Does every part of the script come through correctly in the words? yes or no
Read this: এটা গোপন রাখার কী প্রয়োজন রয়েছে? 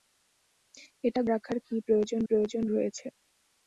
no